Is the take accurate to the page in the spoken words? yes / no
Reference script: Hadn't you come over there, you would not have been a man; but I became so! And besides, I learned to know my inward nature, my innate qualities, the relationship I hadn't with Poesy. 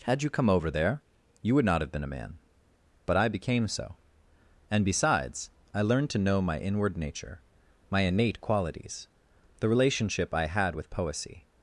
no